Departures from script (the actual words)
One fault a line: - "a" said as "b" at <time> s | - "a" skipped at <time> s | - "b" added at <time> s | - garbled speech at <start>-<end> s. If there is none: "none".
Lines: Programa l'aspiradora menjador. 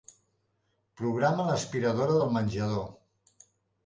- "del" added at 2.2 s